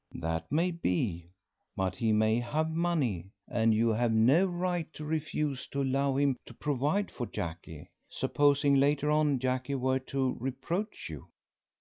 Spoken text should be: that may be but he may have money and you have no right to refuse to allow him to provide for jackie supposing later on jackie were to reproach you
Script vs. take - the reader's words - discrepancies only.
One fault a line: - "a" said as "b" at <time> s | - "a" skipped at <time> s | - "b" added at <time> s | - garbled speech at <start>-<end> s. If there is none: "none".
none